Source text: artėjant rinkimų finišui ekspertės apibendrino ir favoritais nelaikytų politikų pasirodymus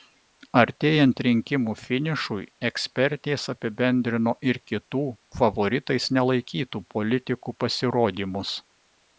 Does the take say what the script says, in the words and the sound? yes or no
no